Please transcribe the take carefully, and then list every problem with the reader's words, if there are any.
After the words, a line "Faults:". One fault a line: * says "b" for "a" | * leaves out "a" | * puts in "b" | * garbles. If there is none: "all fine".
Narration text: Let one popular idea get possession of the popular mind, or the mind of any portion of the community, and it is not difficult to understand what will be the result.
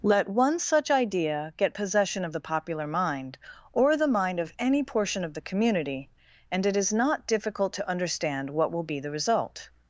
Let one such idea get possession of the popular mind, or the mind of any portion of the community, and it is not difficult to understand what will be the result.
Faults:
* says "such" for "popular"